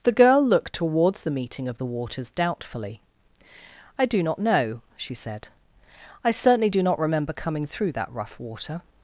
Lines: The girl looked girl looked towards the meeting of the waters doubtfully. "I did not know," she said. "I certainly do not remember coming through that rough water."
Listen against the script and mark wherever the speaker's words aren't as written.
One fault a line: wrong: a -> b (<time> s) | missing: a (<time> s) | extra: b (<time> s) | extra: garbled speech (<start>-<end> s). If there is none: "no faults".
missing: girl looked (0.7 s)
wrong: did -> do (4.0 s)